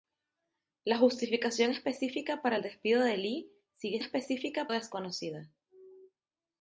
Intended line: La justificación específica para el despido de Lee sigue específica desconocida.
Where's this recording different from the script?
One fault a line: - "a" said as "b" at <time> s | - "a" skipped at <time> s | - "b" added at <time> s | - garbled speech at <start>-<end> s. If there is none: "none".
none